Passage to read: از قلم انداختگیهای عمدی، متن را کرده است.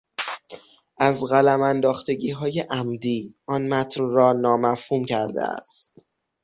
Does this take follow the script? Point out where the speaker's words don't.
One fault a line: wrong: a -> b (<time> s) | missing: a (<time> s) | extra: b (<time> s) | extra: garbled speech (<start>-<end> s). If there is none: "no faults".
extra: آن (3.5 s)
extra: نامفهوم (4.3 s)